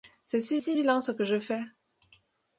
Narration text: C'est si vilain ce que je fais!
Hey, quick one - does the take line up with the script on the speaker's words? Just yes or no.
no